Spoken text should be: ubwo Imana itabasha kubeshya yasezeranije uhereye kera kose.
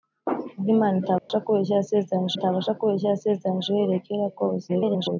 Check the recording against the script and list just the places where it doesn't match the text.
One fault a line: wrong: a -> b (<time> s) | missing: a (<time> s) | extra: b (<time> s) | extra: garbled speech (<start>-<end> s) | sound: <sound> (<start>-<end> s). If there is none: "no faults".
sound: dropout (1.2-1.3 s)
extra: itabasha kubeshya yasezeranije (2.4 s)
extra: garbled speech (4.7-5.2 s)